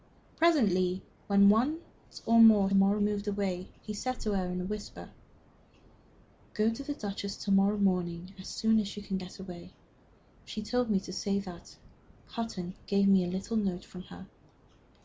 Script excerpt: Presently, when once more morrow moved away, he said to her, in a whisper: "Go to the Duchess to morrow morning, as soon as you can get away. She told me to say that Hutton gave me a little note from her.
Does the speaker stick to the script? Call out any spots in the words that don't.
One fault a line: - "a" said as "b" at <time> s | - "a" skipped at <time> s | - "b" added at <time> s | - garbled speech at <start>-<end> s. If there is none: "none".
none